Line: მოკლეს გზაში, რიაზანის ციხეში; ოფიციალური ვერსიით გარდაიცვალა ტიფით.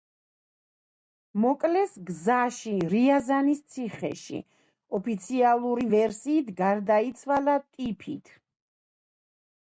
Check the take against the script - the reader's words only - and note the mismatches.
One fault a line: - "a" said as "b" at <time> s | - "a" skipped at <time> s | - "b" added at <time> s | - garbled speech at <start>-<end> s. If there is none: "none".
none